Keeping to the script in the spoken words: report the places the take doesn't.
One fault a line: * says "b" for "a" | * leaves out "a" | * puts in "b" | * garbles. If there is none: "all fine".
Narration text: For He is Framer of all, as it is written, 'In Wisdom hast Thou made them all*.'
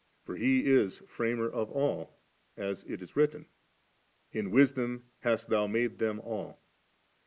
all fine